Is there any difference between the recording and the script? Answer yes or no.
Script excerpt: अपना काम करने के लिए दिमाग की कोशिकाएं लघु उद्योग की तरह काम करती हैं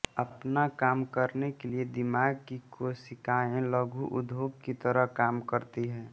no